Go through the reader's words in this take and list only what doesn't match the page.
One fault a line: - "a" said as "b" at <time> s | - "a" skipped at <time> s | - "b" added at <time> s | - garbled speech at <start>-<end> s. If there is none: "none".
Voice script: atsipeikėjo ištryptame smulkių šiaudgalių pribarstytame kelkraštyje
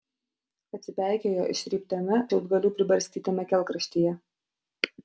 - "smulkių" skipped at 2.2 s